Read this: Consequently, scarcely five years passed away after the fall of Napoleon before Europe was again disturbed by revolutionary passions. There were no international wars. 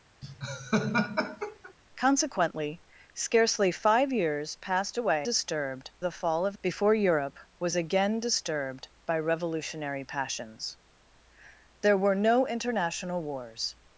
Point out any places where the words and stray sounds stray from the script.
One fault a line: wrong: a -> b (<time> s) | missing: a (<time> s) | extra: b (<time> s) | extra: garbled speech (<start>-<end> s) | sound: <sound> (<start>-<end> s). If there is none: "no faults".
sound: laugh (0.2-1.7 s)
wrong: after -> disturbed (5.2 s)
missing: Napoleon (6.6 s)